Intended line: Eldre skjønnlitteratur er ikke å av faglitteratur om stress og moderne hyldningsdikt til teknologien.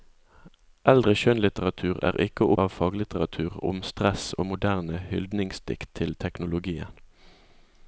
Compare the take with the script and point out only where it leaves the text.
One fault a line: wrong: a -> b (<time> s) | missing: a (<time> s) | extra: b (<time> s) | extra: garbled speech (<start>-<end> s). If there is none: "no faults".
no faults